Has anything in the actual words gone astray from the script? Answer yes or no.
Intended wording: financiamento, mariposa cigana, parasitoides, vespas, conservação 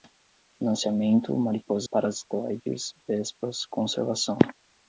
yes